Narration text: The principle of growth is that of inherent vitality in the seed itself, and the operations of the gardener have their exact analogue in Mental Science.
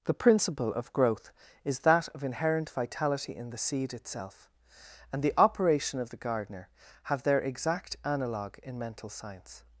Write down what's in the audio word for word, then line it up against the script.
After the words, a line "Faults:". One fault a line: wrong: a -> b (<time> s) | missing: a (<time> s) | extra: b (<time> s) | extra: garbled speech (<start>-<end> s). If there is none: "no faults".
The principle of growth is that of inherent vitality in the seed itself, and the operation of the gardener have their exact analogue in Mental Science.
Faults:
wrong: operations -> operation (5.4 s)